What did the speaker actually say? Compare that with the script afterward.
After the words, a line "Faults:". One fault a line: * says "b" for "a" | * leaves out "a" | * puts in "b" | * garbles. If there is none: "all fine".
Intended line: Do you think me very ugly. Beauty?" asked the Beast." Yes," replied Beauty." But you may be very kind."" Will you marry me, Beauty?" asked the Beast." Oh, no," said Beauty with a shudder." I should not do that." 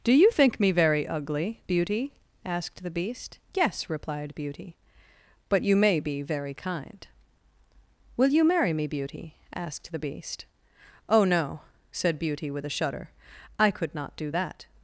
Do you think me very ugly. Beauty?" asked the Beast." Yes," replied Beauty." But you may be very kind."" Will you marry me, Beauty?" asked the Beast." Oh, no," said Beauty with a shudder." I could not do that."
Faults:
* says "could" for "should"